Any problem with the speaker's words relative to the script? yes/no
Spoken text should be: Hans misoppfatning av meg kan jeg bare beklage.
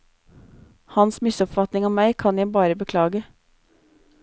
no